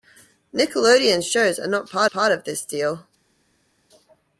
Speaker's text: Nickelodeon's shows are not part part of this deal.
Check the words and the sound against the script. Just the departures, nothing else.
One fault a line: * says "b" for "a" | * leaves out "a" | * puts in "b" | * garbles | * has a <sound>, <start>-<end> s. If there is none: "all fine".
all fine